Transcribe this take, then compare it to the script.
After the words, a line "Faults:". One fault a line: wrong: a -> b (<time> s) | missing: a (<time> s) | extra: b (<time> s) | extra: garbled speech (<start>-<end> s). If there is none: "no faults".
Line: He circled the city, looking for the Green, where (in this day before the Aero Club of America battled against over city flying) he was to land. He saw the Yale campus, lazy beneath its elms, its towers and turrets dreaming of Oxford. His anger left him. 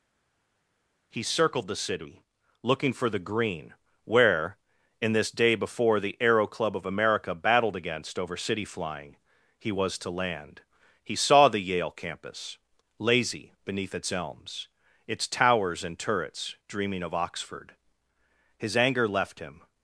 He circled the city, looking for the Green, where (in this day before the Aero Club of America battled against over city flying) he was to land. He saw the Yale campus, lazy beneath its elms, its towers and turrets dreaming of Oxford. His anger left him.
Faults:
no faults